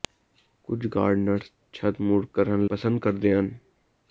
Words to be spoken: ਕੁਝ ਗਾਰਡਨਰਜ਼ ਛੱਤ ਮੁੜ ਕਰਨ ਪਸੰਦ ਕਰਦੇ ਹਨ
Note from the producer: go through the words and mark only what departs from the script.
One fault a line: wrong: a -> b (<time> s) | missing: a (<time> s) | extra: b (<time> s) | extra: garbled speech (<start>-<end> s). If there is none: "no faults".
no faults